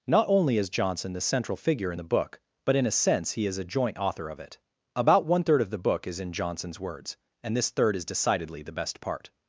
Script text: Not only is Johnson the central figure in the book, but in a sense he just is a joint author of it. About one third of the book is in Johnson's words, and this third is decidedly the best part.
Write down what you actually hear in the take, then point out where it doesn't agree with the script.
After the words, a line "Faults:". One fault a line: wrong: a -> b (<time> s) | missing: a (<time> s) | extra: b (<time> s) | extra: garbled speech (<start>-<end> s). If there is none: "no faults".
Not only is Johnson the central figure in the book, but in a sense he is a joint author of it. About one third of the book is in Johnson's words, and this third is decidedly the best part.
Faults:
missing: just (3.5 s)